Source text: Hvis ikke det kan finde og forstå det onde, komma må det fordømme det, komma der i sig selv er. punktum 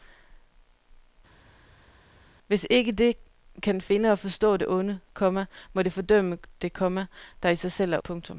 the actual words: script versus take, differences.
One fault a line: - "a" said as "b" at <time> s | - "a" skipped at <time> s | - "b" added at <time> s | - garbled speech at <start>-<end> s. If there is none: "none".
none